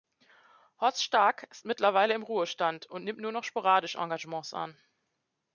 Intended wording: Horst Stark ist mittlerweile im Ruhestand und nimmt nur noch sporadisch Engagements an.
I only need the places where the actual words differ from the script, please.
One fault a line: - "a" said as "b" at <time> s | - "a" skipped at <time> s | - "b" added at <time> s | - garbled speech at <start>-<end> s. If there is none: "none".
none